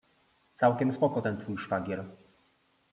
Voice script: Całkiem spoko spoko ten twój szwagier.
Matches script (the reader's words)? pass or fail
fail